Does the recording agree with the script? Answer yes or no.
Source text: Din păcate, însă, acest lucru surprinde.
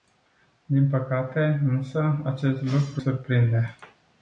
yes